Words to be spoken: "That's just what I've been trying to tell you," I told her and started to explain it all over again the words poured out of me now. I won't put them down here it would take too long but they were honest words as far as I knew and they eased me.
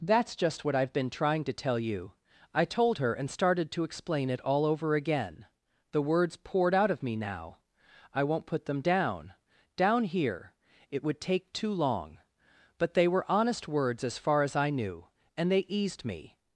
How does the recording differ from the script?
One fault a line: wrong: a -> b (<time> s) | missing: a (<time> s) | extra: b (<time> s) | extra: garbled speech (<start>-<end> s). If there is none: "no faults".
extra: down (9.8 s)